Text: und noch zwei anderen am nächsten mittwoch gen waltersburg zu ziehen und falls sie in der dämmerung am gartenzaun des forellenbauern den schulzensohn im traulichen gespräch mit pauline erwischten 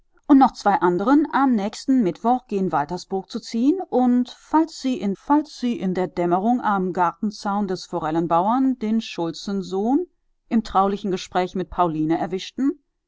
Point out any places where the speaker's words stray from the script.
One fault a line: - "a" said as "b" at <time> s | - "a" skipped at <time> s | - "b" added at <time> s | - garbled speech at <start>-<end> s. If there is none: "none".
- "falls sie in" added at 5.1 s